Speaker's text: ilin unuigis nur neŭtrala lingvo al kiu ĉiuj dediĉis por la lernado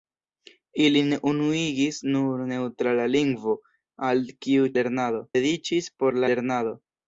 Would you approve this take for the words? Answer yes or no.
no